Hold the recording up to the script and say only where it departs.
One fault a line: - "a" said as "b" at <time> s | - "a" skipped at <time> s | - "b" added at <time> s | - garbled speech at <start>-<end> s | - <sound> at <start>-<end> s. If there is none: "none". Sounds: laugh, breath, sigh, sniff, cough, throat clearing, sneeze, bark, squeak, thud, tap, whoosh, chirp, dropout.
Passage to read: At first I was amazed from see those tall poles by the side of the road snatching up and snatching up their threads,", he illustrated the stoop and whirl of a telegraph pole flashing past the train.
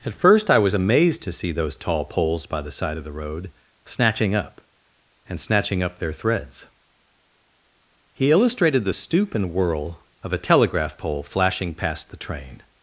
- "from" said as "to" at 1.2 s